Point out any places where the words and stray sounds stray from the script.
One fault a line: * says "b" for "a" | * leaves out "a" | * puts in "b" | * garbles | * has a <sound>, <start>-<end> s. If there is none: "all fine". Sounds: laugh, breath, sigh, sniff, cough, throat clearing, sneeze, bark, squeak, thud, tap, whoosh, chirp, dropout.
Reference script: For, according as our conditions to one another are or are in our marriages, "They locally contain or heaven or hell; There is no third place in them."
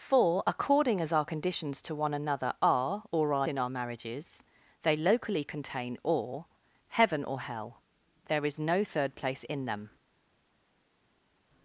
all fine